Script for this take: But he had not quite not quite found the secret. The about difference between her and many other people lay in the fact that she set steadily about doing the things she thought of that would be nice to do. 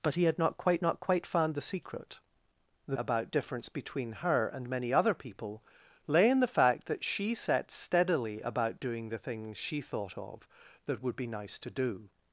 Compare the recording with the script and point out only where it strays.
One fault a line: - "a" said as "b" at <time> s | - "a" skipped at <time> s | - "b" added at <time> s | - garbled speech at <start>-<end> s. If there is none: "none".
none